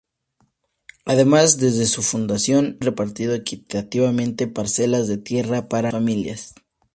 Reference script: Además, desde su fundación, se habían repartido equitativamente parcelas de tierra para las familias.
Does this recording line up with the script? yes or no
no